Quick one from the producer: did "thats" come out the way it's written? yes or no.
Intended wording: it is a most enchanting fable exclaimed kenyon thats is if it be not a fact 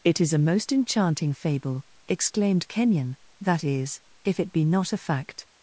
no